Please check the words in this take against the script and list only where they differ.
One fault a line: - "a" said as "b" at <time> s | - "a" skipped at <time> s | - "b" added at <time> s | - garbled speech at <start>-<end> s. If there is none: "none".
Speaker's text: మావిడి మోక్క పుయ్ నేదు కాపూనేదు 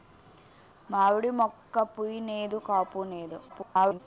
- garbled speech at 3.5-4.0 s